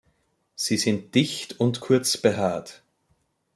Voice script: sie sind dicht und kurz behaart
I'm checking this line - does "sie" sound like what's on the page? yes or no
yes